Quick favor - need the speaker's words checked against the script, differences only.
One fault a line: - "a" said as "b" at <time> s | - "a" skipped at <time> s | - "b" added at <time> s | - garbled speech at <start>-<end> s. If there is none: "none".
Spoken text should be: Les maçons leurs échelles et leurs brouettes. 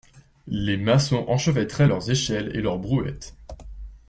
- "enchevêtraient" added at 1.3 s